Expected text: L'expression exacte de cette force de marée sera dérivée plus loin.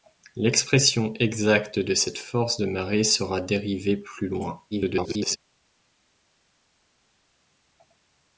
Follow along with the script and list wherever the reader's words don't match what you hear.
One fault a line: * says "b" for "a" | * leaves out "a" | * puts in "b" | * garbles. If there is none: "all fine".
* garbles